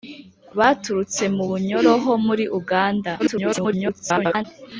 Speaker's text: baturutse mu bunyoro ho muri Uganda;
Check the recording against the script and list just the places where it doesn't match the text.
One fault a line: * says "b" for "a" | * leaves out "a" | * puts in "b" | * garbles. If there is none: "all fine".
* garbles